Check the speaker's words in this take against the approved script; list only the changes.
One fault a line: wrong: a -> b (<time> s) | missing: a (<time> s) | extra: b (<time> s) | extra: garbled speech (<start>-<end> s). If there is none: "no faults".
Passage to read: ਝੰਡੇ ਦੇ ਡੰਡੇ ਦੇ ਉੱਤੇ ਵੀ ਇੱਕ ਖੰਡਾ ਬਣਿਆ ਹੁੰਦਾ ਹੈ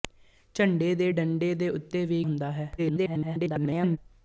missing: ਇੱਕ ਖੰਡਾ ਬਣਿਆ (2.2 s)
extra: garbled speech (2.8-4.0 s)